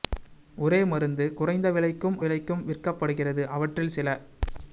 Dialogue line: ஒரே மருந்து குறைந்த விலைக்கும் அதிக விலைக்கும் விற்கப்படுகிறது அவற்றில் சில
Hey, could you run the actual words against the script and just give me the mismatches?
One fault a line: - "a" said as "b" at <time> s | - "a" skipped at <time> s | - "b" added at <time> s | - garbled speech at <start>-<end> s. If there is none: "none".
- "அதிக" skipped at 2.2 s